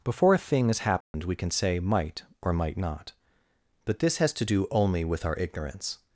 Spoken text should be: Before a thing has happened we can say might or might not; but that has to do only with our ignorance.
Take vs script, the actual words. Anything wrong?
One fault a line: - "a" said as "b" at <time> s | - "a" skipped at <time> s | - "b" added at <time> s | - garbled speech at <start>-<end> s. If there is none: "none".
- "that" said as "this" at 4.0 s